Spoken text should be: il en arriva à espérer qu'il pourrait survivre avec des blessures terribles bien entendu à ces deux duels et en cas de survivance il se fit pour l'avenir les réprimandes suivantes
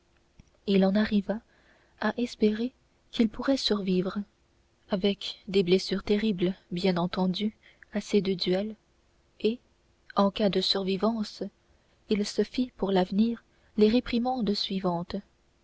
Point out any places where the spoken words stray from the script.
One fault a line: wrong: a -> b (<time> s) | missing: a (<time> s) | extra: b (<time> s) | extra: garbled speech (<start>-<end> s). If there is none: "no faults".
no faults